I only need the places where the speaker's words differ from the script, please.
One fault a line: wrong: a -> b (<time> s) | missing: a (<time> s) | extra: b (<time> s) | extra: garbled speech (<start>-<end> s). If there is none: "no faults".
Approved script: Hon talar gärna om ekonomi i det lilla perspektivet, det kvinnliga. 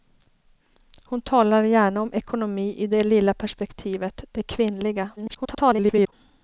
extra: garbled speech (5.2-6.1 s)